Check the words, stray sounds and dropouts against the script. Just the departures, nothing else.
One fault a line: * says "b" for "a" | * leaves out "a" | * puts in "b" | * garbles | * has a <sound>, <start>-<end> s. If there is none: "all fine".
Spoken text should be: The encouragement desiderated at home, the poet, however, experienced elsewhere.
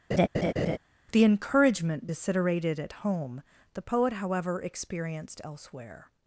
* has a laugh, 0.1-0.8 s